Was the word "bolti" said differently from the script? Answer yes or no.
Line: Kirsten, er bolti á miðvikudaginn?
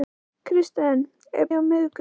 yes